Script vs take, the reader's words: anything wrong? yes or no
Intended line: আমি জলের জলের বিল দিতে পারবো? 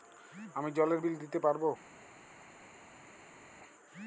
yes